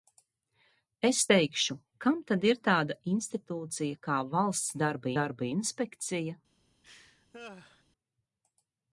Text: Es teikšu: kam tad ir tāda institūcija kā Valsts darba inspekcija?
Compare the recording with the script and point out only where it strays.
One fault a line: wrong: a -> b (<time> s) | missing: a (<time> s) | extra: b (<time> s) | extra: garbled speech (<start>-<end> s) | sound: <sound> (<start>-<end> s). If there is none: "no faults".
extra: darba (5.2 s)
sound: laugh (6.8-7.8 s)